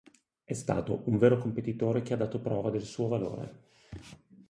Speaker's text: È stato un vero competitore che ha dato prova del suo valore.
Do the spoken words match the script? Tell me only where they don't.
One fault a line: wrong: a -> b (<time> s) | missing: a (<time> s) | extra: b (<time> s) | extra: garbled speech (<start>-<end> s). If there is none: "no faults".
no faults